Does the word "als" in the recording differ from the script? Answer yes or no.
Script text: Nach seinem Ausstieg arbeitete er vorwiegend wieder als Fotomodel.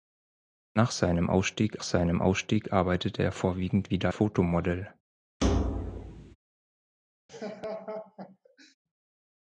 yes